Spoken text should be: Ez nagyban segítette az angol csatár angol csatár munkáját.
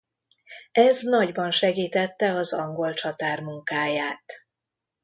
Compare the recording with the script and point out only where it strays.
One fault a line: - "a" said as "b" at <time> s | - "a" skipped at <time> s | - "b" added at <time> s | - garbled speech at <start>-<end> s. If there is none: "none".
- "angol csatár" skipped at 3.4 s